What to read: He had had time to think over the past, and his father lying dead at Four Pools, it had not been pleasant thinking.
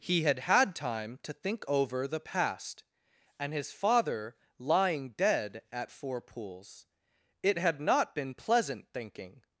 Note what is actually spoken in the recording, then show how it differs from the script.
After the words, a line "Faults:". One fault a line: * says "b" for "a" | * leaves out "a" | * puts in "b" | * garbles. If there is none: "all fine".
He had had time to think over the past, and his father lying dead at Four Pools, it had not been pleasant thinking.
Faults:
all fine